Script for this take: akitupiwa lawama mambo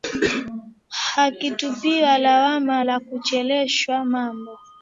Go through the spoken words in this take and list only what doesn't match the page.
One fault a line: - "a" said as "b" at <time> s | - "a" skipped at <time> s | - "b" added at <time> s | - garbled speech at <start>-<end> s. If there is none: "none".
- "la kuchelewesha" added at 2.8 s